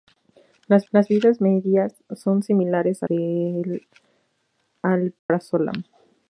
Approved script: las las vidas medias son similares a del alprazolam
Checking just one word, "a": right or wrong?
right